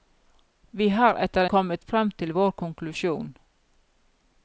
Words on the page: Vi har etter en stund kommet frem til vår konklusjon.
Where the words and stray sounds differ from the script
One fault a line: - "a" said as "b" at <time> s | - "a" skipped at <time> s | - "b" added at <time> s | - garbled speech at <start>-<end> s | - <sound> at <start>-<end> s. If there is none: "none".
- "en stund" skipped at 1.4 s